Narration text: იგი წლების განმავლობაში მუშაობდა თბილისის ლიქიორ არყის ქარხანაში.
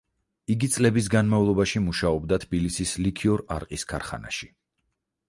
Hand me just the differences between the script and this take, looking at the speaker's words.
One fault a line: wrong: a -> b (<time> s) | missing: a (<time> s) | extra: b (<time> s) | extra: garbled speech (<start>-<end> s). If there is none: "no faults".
no faults